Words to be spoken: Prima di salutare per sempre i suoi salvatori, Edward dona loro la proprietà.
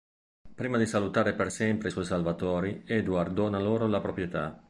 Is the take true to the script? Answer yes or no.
yes